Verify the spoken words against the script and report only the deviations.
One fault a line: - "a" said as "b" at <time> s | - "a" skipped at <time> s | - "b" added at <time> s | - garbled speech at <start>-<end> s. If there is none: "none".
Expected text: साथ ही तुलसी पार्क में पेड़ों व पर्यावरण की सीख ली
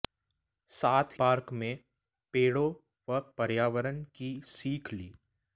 - "ही तुलसी" skipped at 1.2 s